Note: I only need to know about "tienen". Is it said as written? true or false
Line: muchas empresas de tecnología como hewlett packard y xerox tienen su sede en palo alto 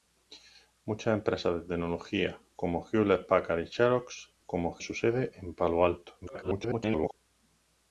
false